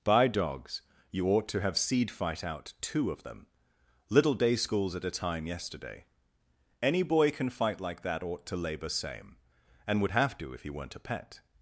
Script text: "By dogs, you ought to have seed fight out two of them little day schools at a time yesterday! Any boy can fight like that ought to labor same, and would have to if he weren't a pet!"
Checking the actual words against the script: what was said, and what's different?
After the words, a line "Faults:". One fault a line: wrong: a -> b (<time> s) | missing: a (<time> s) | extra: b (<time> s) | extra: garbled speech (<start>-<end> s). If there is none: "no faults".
"By dogs, you ought to have seed fight out two of them little day schools at a time yesterday! Any boy can fight like that ought to labor same, and would have to if he weren't a pet!"
Faults:
no faults